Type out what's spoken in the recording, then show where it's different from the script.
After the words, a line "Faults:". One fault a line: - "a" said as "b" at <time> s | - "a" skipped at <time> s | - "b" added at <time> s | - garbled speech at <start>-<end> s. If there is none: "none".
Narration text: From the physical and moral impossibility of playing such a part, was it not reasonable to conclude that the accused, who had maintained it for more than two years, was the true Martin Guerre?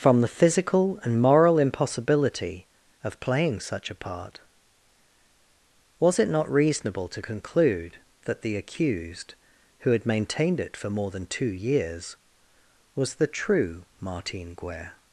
From the physical and moral impossibility of playing such a part, was it not reasonable to conclude that the accused, who had maintained it for more than two years, was the true Martin Guerre?
Faults:
none